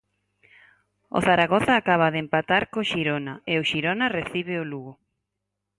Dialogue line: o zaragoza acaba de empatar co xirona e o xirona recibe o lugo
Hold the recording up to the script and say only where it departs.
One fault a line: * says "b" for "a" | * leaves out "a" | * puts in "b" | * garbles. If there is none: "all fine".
all fine